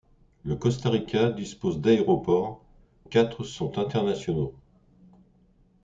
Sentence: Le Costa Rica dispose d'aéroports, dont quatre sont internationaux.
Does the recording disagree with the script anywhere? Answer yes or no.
yes